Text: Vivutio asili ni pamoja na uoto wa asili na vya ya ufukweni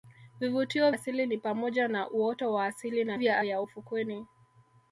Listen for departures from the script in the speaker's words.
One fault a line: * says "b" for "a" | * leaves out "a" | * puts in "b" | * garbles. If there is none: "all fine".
all fine